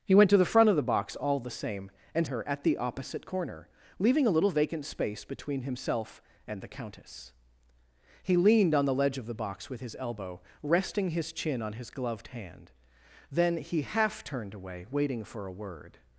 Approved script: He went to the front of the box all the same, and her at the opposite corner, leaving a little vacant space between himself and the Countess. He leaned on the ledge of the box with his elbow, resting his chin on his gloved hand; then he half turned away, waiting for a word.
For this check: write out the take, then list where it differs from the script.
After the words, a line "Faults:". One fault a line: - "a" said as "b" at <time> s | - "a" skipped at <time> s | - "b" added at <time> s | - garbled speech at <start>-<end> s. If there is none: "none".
He went to the front of the box all the same, and her at the opposite corner, leaving a little vacant space between himself and the Countess. He leaned on the ledge of the box with his elbow, resting his chin on his gloved hand; then he half turned away, waiting for a word.
Faults:
none